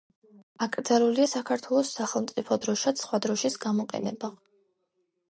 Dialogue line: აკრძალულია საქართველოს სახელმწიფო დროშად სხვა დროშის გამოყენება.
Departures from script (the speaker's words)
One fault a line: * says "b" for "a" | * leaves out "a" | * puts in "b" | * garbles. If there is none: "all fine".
all fine